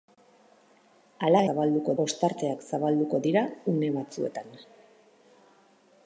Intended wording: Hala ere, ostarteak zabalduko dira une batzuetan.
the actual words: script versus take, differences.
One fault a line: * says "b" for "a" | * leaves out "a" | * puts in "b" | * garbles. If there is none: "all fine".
* says "zabalduko" for "ere"